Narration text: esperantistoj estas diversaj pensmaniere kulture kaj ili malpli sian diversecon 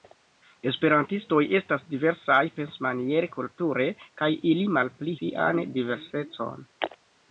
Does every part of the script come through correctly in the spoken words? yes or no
yes